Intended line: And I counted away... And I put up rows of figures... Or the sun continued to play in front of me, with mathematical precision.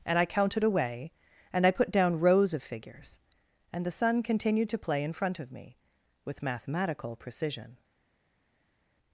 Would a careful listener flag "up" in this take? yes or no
yes